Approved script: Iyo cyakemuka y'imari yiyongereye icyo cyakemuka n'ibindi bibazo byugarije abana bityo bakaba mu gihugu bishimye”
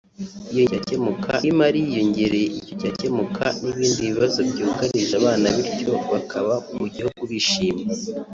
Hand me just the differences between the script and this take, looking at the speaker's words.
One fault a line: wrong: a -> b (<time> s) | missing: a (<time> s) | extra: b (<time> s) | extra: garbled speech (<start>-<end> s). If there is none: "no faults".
no faults